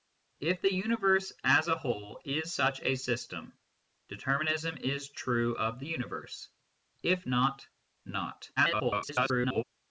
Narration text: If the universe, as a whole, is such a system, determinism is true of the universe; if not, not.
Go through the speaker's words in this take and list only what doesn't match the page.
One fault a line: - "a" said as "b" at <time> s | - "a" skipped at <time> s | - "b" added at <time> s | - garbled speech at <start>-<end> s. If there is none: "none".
- garbled speech at 8.6-9.6 s